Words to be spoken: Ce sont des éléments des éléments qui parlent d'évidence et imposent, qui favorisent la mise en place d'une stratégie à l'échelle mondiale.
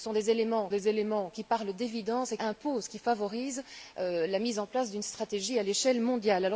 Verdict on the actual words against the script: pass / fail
pass